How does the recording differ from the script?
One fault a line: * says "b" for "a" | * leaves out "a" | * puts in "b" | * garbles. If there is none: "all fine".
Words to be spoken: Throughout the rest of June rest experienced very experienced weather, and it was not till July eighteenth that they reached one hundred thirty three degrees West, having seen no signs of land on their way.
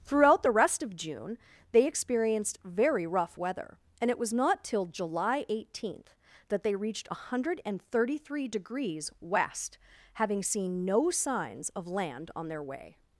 * says "they" for "rest"
* says "rough" for "experienced"